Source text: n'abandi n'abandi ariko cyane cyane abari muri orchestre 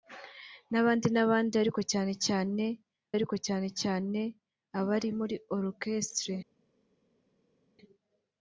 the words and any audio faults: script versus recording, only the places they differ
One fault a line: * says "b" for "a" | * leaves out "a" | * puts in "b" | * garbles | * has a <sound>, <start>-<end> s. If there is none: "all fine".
* puts in "ariko cyane cyane"